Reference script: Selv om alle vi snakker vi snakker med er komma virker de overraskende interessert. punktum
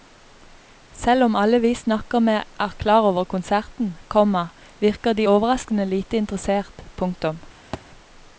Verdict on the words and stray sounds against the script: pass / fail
fail